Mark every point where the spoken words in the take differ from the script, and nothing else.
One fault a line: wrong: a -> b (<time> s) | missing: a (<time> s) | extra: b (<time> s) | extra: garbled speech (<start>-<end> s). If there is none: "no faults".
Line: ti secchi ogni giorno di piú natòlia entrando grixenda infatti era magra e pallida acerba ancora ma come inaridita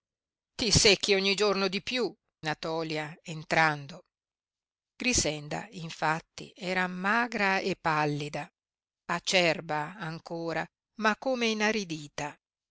no faults